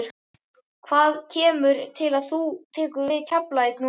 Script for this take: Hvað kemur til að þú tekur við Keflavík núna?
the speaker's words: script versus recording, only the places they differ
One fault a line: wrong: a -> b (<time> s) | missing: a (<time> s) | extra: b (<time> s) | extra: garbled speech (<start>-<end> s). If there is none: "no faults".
no faults